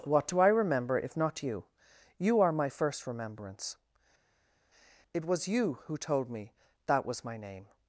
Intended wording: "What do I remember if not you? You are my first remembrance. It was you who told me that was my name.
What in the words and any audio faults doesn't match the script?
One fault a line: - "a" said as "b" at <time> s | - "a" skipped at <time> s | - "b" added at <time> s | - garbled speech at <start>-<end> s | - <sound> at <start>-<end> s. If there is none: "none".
none